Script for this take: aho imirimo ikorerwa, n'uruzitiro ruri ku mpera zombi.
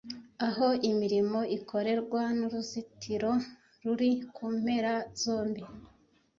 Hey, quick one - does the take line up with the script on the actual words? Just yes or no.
yes